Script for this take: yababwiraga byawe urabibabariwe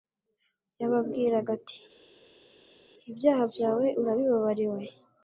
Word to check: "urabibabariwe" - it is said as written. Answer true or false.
true